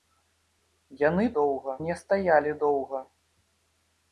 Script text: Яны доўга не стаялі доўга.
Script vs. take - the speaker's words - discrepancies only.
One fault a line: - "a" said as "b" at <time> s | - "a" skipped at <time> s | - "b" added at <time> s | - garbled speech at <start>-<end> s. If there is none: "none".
none